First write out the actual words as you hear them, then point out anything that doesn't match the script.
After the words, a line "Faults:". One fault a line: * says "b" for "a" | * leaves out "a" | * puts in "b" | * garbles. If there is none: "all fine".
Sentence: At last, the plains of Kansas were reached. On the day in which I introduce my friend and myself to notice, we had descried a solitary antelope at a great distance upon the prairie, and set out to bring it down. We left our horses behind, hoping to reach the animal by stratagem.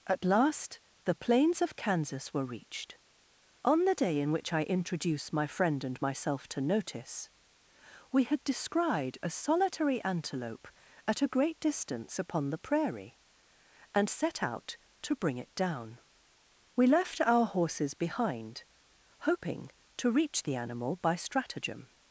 At last, the plains of Kansas were reached. On the day in which I introduce my friend and myself to notice, we had descried a solitary antelope at a great distance upon the prairie, and set out to bring it down. We left our horses behind, hoping to reach the animal by stratagem.
Faults:
all fine